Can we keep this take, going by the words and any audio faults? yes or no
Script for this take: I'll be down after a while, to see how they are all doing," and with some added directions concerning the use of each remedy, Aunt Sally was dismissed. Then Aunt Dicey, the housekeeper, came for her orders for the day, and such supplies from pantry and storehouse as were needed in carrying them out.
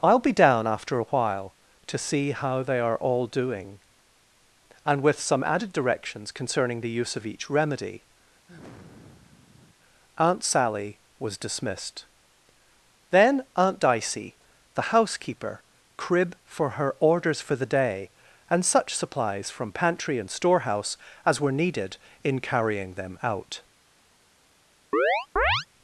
no